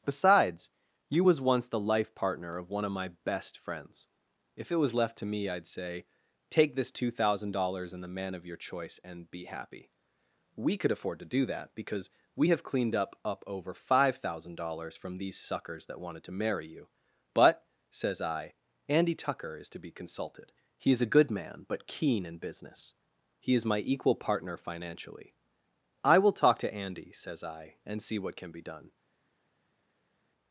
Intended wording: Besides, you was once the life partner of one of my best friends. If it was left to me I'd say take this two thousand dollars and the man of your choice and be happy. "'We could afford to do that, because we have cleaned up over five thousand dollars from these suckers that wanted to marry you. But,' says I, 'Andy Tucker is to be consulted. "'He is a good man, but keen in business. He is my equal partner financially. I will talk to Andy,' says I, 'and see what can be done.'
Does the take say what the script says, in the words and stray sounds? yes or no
no